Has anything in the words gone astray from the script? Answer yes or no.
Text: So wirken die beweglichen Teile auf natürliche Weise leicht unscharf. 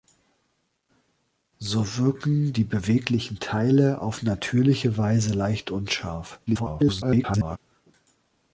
yes